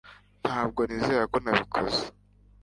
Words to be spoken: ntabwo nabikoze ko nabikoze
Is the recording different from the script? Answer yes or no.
yes